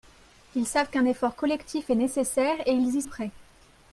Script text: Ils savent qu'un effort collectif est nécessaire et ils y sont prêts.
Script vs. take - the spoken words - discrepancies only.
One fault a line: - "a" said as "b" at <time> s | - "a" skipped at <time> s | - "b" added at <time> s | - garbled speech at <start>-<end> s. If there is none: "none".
- "sont" skipped at 3.0 s